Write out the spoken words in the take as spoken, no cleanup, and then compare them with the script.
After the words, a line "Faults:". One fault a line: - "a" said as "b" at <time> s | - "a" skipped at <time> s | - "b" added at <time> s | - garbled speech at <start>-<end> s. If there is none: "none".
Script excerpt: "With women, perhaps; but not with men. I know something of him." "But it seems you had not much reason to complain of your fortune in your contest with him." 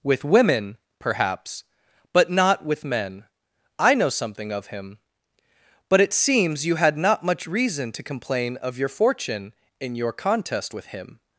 "With women, perhaps; but not with men. I know something of him." "But it seems you had not much reason to complain of your fortune in your contest with him."
Faults:
none